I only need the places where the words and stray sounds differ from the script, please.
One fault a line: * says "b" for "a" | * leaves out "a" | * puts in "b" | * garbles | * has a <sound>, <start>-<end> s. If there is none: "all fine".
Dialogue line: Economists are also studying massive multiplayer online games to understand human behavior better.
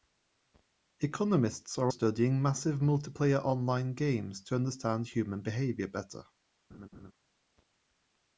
* leaves out "also"
* has a laugh, 6.7-7.1 s